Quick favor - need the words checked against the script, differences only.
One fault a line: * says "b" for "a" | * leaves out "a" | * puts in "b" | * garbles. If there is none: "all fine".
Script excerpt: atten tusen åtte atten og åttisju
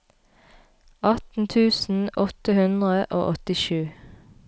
* says "hundre" for "atten"